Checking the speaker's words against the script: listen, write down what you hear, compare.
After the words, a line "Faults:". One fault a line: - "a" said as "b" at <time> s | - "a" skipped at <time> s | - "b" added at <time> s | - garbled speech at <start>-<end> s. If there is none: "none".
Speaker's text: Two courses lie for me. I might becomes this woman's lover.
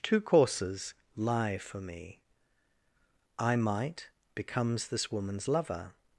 Two courses lie for me. I might becomes this woman's lover.
Faults:
none